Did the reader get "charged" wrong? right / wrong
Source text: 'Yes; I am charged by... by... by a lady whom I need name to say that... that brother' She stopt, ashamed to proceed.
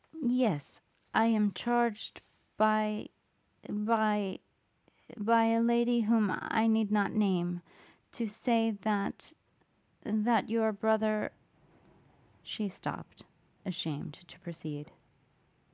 right